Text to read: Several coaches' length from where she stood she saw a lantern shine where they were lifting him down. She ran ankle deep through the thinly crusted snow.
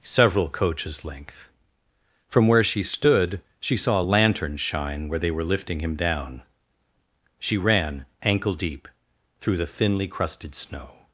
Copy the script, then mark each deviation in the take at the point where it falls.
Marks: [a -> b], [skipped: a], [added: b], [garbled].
Several coaches' length from where she stood she saw a lantern shine where they were lifting him down. She ran ankle deep through the thinly crusted snow.